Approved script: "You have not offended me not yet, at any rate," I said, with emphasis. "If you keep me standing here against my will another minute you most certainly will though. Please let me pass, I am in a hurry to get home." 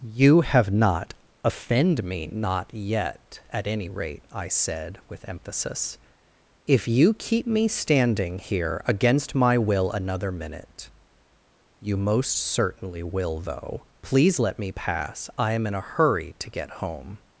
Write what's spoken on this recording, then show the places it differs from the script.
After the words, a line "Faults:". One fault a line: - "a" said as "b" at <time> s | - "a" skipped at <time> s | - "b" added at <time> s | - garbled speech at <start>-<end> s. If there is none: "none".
"You have not offend me not yet, at any rate," I said, with emphasis. "If you keep me standing here against my will another minute you most certainly will though. Please let me pass, I am in a hurry to get home."
Faults:
- "offended" said as "offend" at 1.4 s